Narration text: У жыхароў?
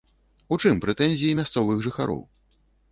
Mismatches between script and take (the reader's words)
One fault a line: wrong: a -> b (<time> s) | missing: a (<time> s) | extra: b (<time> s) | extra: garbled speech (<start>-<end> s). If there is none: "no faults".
extra: чым прэтэнзіі мясцовых (0.6 s)